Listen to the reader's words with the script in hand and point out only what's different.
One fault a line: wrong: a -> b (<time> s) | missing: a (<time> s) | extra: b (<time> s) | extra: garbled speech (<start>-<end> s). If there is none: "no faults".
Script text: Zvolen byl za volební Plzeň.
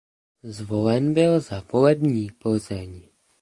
no faults